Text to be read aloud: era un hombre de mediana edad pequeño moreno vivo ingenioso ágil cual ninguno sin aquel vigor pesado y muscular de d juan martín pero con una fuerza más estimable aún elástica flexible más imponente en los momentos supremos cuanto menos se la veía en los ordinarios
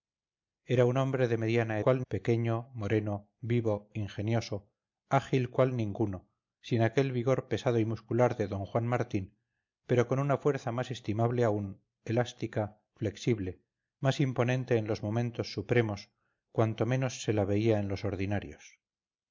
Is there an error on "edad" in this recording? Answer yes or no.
yes